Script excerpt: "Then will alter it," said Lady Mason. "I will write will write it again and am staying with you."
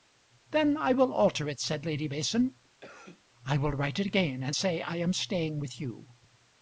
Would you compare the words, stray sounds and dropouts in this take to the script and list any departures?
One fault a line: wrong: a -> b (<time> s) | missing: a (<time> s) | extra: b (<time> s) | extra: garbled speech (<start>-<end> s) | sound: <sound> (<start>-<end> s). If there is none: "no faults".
extra: I (0.8 s)
sound: cough (2.8-3.2 s)
missing: will write (4.0 s)
extra: say I (4.5 s)